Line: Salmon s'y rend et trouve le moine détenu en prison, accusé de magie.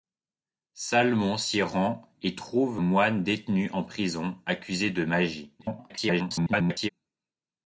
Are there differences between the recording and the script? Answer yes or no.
yes